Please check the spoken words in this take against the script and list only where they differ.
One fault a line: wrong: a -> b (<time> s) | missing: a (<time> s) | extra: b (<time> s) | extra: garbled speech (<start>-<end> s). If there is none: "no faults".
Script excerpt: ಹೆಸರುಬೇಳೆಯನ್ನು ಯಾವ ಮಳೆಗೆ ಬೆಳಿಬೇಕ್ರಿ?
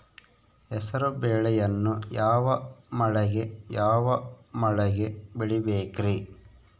extra: ಯಾವ ಮಳೆಗೆ (3.7 s)